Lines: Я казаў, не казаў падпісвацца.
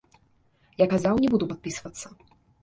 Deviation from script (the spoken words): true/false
true